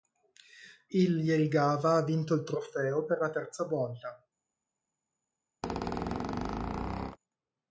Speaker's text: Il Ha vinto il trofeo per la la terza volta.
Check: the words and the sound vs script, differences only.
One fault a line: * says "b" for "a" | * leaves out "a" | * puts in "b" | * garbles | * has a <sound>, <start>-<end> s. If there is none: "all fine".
* puts in "Jelgava"
* leaves out "la"
* has a squeak, 5.6-7.2 s